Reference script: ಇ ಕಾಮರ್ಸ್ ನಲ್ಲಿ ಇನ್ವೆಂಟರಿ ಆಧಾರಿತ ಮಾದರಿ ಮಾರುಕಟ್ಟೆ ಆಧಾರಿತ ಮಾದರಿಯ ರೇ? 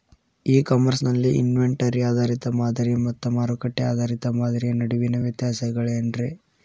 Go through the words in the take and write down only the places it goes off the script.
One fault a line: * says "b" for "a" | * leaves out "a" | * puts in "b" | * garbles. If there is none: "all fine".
* puts in "ಮತ್ತ"
* puts in "ನಡುವಿನ ವ್ಯತ್ಯಾಸಗಳೇನ"